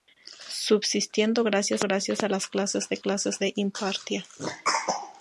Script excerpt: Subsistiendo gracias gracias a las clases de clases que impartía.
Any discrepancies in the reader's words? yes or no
no